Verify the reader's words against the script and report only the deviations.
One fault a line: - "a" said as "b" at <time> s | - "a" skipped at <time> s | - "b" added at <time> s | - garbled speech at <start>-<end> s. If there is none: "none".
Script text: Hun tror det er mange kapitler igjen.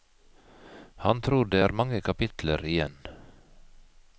- "Hun" said as "Han" at 1.0 s